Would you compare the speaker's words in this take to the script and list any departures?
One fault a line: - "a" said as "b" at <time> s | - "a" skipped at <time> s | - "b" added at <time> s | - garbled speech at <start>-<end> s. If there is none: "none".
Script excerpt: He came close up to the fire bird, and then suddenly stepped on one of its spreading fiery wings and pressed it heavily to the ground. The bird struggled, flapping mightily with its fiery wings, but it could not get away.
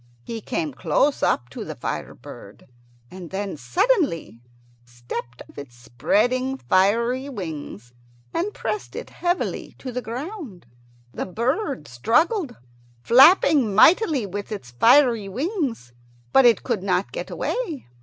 - "on one" skipped at 5.4 s